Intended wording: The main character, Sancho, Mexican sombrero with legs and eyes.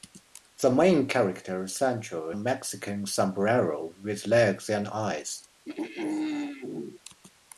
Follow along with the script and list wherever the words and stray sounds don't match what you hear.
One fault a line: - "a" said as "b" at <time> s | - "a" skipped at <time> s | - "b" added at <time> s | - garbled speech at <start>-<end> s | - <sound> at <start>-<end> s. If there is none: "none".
- throat clearing at 5.6-7.0 s